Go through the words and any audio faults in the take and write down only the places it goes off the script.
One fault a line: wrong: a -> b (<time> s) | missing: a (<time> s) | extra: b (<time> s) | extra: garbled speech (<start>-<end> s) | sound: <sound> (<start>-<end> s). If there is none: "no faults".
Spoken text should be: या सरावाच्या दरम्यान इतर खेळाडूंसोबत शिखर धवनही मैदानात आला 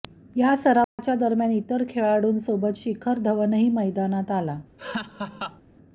sound: dropout (0.8-1.0 s)
sound: laugh (4.8-5.6 s)